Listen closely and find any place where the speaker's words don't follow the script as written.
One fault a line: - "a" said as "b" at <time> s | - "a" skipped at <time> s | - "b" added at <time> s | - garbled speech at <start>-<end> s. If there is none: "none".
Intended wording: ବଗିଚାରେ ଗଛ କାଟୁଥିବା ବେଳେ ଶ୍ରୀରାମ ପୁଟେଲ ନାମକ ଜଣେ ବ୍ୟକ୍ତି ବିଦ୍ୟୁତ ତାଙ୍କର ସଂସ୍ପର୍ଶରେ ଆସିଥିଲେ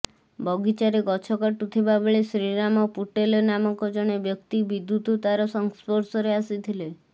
- "ତାଙ୍କର" said as "ତାର" at 5.2 s